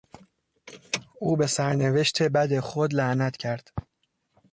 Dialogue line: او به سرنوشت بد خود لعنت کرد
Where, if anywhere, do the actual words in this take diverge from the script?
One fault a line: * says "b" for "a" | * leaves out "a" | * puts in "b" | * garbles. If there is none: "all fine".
all fine